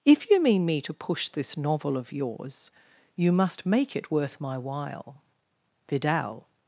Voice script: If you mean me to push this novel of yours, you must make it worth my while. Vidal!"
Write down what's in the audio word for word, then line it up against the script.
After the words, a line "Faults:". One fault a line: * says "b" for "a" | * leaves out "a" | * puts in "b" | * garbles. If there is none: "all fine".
If you mean me to push this novel of yours, you must make it worth my while. Vidal!"
Faults:
all fine